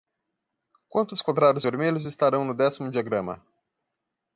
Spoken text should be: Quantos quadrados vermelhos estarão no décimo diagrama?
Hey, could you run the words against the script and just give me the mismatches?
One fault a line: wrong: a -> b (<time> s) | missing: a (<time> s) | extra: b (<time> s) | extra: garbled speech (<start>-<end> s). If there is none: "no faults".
no faults